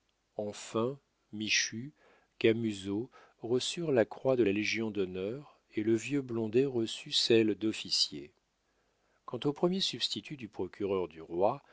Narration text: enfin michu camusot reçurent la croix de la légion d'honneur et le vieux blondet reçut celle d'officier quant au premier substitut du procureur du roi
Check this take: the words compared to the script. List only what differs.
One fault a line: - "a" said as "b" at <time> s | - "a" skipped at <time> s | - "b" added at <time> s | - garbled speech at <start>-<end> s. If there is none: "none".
none